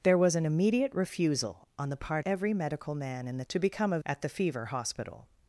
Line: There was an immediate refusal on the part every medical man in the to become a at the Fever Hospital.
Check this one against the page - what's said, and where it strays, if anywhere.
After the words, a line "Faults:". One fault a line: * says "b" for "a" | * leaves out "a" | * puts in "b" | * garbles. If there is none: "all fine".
There was an immediate refusal on the part every medical man in the to become a at the Fever Hospital.
Faults:
all fine